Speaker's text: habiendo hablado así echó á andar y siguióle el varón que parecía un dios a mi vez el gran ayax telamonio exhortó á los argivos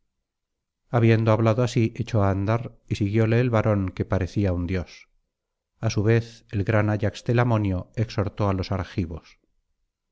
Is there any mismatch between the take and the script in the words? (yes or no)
yes